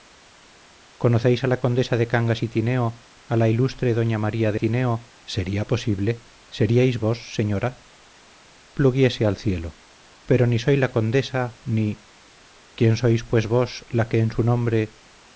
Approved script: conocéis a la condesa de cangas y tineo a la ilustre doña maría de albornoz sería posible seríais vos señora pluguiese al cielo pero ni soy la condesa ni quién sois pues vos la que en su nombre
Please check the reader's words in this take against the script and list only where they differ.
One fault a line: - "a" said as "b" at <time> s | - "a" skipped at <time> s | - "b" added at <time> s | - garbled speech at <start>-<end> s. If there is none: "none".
- "albornoz" said as "tineo" at 4.6 s